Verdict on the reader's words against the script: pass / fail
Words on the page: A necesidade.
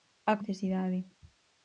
pass